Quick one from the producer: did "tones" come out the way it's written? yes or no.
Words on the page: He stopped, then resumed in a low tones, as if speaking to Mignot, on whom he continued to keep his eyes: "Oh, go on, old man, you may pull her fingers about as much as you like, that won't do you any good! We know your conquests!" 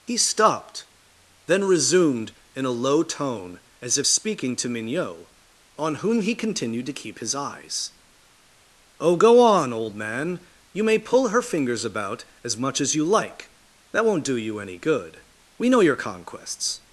no